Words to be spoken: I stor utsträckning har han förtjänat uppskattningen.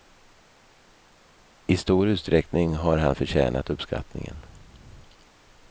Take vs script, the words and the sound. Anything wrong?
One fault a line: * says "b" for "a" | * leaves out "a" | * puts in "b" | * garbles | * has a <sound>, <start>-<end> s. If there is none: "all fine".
all fine